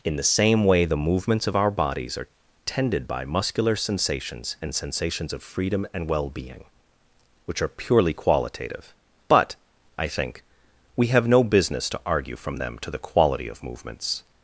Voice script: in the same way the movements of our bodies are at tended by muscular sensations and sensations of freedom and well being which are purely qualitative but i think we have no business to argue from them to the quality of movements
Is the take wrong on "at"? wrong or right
wrong